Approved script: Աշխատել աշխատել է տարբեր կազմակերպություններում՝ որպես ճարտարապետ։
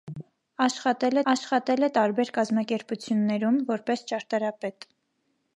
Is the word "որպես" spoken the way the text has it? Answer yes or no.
yes